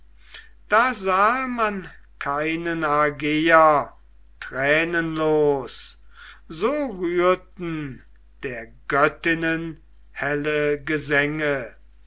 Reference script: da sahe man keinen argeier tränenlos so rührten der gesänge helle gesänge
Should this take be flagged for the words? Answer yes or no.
yes